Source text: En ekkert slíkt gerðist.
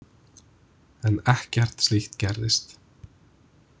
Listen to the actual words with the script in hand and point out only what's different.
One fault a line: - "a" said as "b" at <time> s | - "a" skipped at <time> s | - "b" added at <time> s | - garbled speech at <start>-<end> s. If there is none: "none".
none